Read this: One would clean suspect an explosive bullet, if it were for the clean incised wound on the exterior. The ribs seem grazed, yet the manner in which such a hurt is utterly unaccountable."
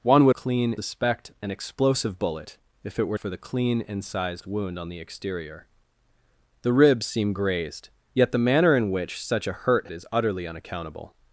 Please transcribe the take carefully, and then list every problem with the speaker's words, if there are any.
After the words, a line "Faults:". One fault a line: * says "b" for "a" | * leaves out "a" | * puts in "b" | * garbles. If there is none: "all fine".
One would clean suspect an explosive bullet, if it were for the clean incised wound on the exterior. The ribs seem grazed, yet the manner in which such a hurt is utterly unaccountable."
Faults:
all fine